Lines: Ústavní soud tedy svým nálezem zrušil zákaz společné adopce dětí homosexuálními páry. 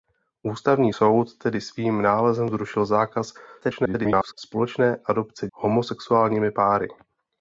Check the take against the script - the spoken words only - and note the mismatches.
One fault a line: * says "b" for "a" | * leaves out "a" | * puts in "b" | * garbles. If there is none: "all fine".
* garbles
* leaves out "dětí"